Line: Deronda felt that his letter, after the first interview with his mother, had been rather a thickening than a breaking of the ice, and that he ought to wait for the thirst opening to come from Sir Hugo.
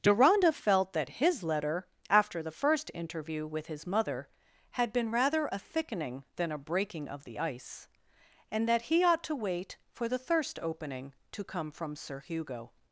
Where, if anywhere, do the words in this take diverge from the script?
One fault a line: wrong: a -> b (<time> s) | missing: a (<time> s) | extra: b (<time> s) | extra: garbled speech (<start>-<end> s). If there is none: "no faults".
no faults